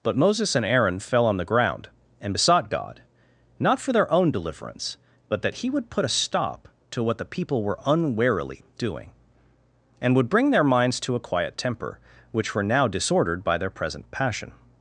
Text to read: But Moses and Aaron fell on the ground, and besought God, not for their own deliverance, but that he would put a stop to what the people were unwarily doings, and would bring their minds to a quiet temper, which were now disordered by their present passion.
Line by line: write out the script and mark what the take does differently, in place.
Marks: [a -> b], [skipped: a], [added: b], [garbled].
But Moses and Aaron fell on the ground, and besought God, not for their own deliverance, but that he would put a stop to what the people were unwarily [doings, -> doing] and would bring their minds to a quiet temper, which were now disordered by their present passion.